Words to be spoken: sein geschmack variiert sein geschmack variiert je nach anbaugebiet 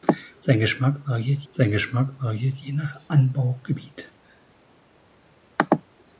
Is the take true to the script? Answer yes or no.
yes